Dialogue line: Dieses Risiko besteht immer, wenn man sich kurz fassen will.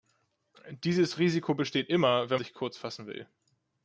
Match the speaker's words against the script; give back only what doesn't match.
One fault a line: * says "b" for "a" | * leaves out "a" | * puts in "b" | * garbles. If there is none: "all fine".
* leaves out "man"